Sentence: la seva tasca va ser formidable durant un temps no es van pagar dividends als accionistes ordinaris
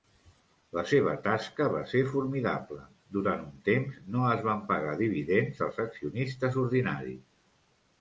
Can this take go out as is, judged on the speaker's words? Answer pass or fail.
pass